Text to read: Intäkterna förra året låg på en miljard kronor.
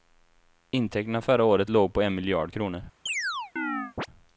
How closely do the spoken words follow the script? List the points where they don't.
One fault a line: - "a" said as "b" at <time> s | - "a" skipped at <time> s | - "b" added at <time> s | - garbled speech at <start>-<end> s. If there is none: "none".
none